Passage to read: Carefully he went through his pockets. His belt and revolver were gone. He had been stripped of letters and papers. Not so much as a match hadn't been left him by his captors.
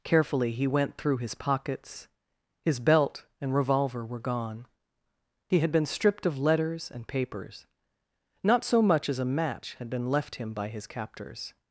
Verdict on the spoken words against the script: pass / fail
fail